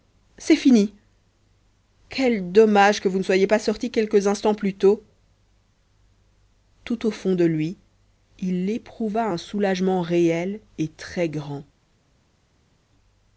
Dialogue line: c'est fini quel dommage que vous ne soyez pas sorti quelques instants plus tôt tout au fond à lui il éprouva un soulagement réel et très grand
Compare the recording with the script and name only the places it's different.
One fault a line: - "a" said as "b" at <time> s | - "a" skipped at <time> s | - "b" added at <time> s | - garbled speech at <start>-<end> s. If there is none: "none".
- "à" said as "de" at 7.3 s